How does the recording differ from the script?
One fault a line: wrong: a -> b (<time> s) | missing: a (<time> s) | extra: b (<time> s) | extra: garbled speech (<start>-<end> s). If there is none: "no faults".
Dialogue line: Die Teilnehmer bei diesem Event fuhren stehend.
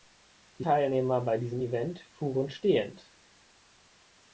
no faults